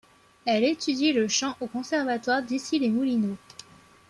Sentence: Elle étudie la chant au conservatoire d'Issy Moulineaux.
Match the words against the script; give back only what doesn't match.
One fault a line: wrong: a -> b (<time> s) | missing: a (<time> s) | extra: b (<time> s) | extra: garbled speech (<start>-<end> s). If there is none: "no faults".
wrong: la -> le (1.1 s)
extra: les (2.8 s)